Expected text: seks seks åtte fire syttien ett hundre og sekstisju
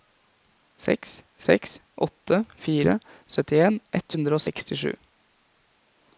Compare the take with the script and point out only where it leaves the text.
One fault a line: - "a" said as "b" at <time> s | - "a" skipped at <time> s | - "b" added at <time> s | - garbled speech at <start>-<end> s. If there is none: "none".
none